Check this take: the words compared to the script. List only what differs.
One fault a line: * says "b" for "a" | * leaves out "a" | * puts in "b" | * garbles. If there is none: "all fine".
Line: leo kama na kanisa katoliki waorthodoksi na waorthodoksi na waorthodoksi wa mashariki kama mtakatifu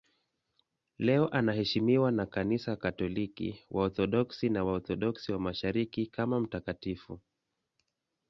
* says "anaheshimiwa" for "kama"
* leaves out "na waorthodoksi"